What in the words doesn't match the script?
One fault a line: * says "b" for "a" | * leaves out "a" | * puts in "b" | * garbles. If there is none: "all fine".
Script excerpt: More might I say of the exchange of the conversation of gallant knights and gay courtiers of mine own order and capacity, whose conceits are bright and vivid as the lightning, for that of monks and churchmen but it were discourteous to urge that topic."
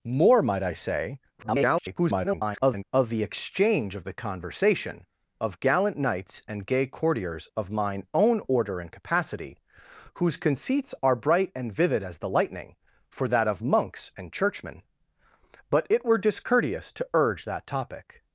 * garbles